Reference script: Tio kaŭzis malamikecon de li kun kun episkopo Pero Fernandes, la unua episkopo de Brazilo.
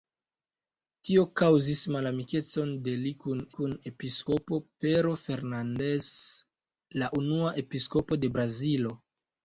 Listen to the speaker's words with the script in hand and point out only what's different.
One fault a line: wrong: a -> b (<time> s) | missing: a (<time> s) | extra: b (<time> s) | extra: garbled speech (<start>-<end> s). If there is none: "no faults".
no faults